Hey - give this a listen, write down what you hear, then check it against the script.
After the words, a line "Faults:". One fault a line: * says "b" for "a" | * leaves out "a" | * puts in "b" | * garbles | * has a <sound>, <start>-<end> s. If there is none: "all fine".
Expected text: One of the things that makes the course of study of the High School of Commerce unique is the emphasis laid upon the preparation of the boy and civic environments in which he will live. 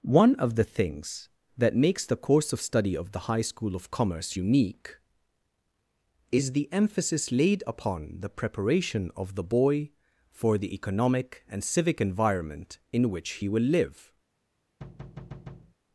One of the things that makes the course of study of the High School of Commerce unique is the emphasis laid upon the preparation of the boy for the economic and civic environment in which he will live.
Faults:
* puts in "for the economic"
* says "environment" for "environments"
* has a thud, 14.8-15.7 s